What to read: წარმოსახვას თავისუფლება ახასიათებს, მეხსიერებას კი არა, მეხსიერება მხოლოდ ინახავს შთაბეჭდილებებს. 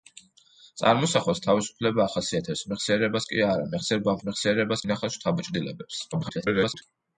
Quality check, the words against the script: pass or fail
fail